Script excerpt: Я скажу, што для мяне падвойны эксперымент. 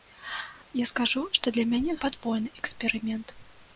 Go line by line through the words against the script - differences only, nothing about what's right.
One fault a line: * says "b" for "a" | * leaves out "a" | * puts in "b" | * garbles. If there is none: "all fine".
all fine